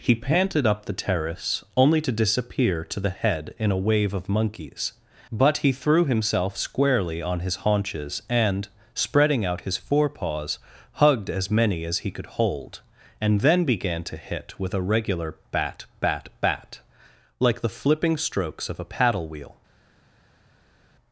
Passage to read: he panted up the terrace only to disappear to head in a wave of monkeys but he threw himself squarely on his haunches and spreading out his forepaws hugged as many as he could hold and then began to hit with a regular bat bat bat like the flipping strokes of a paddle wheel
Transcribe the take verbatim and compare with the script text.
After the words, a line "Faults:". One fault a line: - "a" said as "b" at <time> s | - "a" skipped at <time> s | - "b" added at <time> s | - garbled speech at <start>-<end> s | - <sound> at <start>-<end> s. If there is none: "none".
he panted up the terrace only to disappear to the head in a wave of monkeys but he threw himself squarely on his haunches and spreading out his forepaws hugged as many as he could hold and then began to hit with a regular bat bat bat like the flipping strokes of a paddle wheel
Faults:
- "the" added at 3.0 s